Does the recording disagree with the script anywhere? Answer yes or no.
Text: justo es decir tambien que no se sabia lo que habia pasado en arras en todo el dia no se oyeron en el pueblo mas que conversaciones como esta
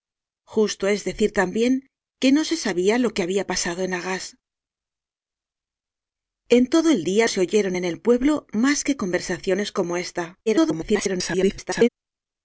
yes